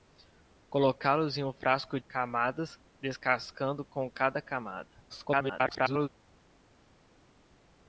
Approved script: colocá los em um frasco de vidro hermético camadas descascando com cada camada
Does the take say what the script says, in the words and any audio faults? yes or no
no